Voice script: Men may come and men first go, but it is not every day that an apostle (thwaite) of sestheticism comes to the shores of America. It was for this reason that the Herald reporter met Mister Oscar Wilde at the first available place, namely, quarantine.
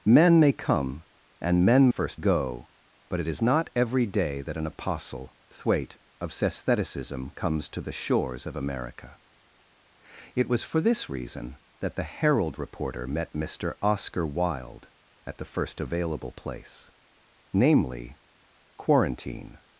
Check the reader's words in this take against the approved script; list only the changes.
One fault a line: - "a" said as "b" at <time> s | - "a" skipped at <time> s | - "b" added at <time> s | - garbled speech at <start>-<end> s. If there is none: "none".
none